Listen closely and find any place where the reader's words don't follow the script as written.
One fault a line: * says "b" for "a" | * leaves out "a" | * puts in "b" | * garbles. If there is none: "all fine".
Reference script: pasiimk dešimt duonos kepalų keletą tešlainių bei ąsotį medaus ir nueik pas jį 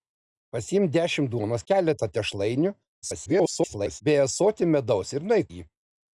* leaves out "kepalų"
* garbles
* leaves out "pas"